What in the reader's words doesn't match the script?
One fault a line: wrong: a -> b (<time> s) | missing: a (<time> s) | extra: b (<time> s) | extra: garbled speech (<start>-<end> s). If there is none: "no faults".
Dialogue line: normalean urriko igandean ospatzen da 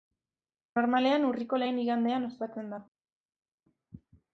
extra: lehen (1.6 s)